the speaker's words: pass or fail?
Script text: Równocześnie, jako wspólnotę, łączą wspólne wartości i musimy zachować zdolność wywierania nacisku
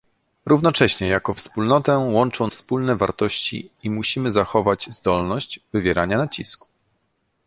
pass